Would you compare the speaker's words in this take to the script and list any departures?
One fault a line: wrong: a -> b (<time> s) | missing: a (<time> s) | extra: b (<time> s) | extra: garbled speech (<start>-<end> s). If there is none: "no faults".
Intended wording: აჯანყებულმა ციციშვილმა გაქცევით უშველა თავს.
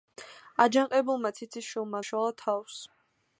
missing: გაქცევით (2.0 s)